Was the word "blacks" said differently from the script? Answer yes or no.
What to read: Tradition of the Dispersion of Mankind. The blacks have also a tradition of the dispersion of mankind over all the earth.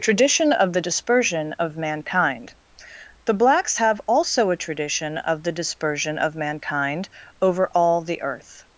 no